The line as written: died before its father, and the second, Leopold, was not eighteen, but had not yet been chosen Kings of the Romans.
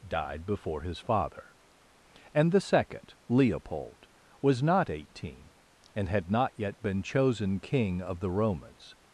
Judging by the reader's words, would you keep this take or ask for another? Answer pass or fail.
fail